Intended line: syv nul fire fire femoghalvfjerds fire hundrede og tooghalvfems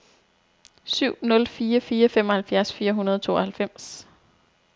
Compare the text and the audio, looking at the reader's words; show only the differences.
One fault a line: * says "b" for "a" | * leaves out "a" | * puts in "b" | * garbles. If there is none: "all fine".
all fine